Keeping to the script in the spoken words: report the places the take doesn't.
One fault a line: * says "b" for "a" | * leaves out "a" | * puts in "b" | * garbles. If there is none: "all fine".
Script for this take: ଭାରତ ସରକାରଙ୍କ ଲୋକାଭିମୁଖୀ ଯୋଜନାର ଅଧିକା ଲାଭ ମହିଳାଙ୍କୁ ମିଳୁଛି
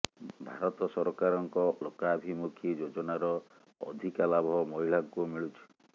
all fine